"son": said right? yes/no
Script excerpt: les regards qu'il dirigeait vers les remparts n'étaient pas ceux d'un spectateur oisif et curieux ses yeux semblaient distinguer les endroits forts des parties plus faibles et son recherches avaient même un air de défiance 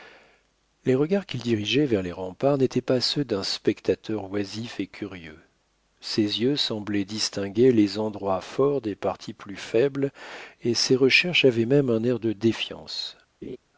no